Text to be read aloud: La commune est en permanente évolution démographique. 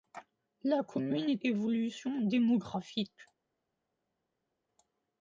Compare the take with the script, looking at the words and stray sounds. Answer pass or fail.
fail